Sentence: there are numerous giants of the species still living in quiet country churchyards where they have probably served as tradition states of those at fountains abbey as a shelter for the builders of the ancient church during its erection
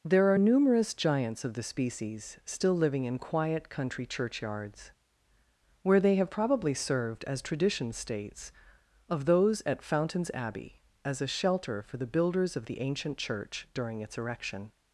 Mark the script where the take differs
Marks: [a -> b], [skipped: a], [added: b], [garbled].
there are numerous giants of the species still living in quiet country churchyards where they have probably served as tradition states of those at fountains abbey as a shelter for the builders of the ancient church during its erection